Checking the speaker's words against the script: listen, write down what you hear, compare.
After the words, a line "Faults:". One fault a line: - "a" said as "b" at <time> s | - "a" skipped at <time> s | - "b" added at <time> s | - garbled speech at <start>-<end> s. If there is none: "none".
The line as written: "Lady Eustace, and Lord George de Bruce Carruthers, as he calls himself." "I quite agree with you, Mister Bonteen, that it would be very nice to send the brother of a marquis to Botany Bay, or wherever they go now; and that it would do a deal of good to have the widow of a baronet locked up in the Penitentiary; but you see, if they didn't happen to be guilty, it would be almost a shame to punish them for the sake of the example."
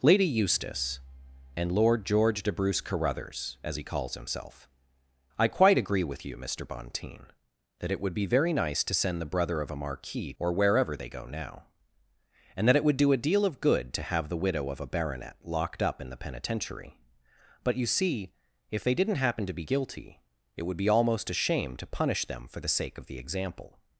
"Lady Eustace, and Lord George de Bruce Carruthers, as he calls himself." "I quite agree with you, Mister Bonteen, that it would be very nice to send the brother of a marquis or wherever they go now; and that it would do a deal of good to have the widow of a baronet locked up in the Penitentiary; but you see, if they didn't happen to be guilty, it would be almost a shame to punish them for the sake of the example."
Faults:
- "to Botany Bay" skipped at 10.3 s